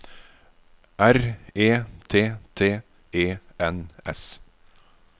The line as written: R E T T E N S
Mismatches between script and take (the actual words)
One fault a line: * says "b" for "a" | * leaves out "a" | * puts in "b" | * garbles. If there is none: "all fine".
all fine